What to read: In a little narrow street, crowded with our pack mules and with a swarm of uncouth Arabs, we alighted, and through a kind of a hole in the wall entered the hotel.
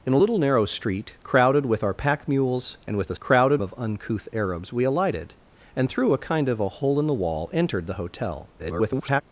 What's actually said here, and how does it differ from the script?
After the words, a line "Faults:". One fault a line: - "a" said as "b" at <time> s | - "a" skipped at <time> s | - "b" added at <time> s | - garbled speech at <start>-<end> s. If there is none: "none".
In a little narrow street, crowded with our pack mules and with a crowded of uncouth Arabs, we alighted, and through a kind of a hole in the wall entered the hotel. [garbled]
Faults:
- "swarm" said as "crowded" at 3.2 s
- garbled speech at 8.6-9.2 s